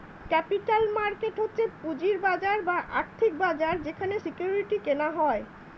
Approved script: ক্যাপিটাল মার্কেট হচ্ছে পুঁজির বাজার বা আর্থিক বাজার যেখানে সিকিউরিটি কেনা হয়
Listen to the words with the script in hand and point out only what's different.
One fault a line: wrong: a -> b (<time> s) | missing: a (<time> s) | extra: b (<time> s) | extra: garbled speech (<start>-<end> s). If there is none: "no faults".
no faults